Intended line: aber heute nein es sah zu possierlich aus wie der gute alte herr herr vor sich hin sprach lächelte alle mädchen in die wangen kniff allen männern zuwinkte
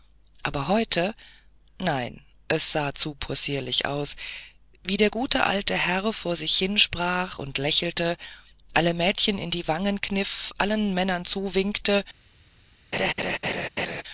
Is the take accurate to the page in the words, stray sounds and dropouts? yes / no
no